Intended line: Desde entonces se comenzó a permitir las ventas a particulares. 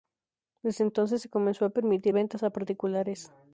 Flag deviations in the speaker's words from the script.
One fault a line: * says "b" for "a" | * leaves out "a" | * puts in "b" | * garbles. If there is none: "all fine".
* leaves out "las"